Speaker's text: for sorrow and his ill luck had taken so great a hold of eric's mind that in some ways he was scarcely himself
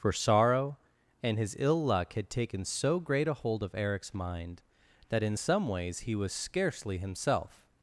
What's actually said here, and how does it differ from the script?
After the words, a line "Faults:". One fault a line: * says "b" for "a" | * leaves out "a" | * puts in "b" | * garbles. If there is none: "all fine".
for sorrow and his ill luck had taken so great a hold of eric's mind that in some ways he was scarcely himself
Faults:
all fine